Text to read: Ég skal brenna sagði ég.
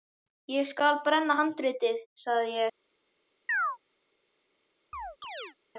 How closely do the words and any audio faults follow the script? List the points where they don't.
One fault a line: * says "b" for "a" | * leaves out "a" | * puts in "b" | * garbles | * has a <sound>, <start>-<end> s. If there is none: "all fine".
* puts in "handritið"
* has a chirp, 3.5-3.8 s
* has a chirp, 4.9-5.6 s